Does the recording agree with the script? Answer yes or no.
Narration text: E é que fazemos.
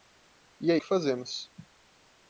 yes